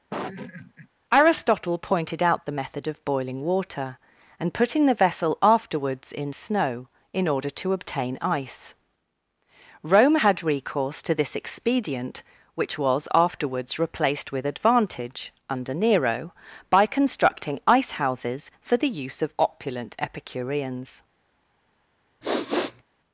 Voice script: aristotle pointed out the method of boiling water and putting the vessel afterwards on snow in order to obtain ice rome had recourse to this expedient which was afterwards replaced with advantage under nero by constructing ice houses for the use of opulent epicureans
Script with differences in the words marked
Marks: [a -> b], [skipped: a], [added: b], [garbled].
aristotle pointed out the method of boiling water and putting the vessel afterwards [on -> in] snow in order to obtain ice rome had recourse to this expedient which was afterwards replaced with advantage under nero by constructing ice houses for the use of opulent epicureans